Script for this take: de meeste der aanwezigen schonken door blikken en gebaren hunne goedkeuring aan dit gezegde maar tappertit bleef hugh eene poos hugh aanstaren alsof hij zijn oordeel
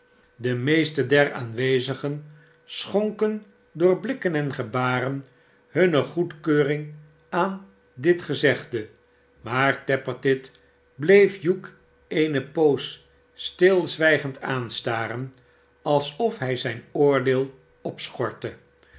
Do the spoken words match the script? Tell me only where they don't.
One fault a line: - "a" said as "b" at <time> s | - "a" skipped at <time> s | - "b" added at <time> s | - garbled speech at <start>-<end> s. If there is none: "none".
- "hugh" said as "stilzwijgend" at 13.3 s